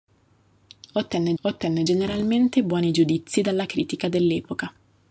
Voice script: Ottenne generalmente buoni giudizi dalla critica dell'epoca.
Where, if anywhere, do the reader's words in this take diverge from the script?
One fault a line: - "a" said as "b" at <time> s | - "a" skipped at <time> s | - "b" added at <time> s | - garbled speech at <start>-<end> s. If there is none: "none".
- "ottenne" added at 1.4 s